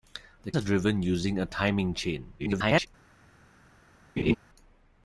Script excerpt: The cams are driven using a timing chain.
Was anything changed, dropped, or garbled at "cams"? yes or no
yes